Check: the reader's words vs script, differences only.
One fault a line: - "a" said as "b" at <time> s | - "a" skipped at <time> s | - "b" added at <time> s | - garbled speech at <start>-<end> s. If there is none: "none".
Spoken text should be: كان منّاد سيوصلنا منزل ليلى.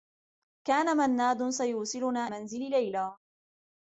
none